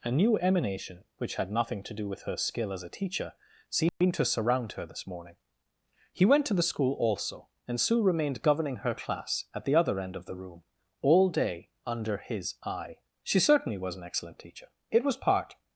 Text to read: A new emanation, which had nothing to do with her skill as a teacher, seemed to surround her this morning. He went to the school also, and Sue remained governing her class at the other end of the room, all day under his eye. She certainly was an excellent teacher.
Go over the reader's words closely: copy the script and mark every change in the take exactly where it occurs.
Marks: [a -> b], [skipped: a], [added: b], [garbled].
A new emanation, which had nothing to do with her skill as a teacher, seemed to surround her this morning. He went to the school also, and Sue remained governing her class at the other end of the room, all day under his eye. She certainly was an excellent teacher. [added: It was part]